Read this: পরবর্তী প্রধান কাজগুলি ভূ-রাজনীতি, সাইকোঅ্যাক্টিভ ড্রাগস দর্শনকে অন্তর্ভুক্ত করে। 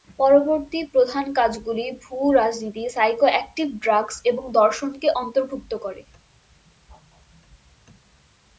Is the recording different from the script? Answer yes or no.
yes